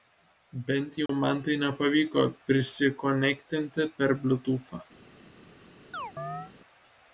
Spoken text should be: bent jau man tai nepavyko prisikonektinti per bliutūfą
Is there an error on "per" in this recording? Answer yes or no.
no